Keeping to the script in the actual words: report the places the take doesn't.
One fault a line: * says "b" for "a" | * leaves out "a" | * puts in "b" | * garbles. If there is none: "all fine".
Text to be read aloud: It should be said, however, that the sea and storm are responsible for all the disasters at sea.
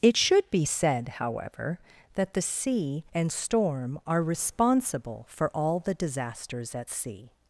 all fine